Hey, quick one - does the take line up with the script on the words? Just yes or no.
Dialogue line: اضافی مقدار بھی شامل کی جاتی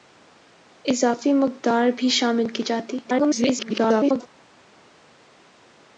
no